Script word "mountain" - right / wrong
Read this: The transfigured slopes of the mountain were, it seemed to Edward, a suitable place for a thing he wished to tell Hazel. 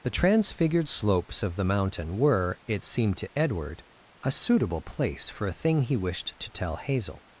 right